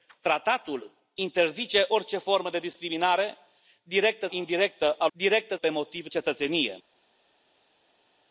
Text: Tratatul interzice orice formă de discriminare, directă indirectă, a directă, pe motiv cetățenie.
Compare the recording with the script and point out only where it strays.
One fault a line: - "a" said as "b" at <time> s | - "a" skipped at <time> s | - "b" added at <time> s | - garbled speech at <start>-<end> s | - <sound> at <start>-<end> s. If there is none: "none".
none